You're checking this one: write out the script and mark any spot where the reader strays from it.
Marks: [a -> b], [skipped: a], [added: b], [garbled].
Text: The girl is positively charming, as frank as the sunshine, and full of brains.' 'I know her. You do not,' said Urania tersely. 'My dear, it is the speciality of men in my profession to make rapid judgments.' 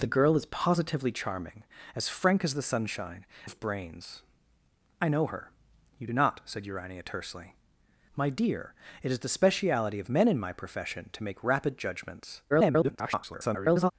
The girl is positively charming, as frank as the sunshine, [skipped: and full] of brains.' 'I know her. You do not,' said Urania tersely. 'My dear, it is the speciality of men in my profession to make rapid judgments.' [garbled]